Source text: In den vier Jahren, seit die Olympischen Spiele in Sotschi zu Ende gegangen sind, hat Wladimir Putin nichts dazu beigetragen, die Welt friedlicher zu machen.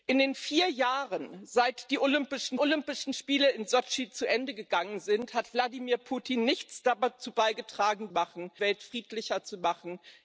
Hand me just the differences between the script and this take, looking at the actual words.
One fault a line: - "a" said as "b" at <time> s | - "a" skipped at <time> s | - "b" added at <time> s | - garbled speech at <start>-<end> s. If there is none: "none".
- "Olympischen" added at 2.6 s
- "die" said as "machen" at 8.1 s